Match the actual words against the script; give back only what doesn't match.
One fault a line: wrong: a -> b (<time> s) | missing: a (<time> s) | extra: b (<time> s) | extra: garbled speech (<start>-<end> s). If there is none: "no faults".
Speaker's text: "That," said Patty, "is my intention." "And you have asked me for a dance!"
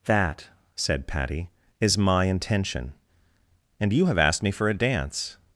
no faults